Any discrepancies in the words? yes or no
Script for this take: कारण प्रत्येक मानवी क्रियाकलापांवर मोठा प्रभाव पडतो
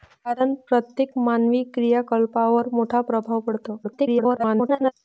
yes